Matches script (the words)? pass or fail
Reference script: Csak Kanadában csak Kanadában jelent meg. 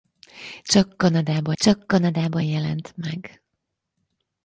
pass